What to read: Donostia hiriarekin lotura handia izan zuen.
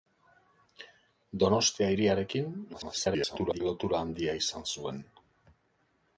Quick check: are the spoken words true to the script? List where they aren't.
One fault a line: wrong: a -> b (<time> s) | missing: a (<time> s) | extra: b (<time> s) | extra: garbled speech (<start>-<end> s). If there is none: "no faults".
extra: garbled speech (2.7-3.6 s)